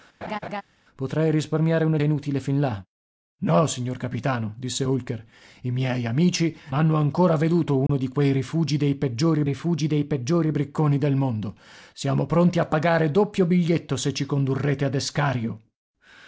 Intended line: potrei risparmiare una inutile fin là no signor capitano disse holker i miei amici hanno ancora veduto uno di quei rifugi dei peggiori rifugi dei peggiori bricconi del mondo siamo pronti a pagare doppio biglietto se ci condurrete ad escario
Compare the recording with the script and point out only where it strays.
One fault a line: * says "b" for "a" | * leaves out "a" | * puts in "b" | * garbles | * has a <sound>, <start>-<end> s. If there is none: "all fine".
* has a laugh, 0.2-0.6 s
* has a dropout, 7.9-7.9 s